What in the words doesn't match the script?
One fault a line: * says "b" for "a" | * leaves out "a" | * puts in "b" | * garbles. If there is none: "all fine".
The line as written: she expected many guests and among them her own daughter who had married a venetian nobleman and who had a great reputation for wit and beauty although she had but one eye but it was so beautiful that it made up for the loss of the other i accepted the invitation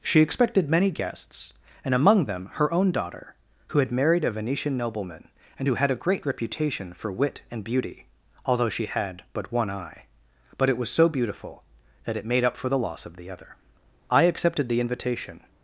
all fine